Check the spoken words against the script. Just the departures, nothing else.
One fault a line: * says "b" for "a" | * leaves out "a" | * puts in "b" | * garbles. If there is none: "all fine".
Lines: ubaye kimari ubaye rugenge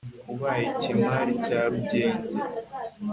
* says "cya" for "ubaye"